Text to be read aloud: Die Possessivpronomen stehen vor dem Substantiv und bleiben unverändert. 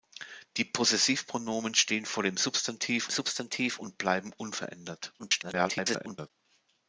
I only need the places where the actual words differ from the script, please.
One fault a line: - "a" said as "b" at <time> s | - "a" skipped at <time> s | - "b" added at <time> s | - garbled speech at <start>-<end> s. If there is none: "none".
- "Substantiv" added at 3.1 s
- garbled speech at 5.2-6.3 s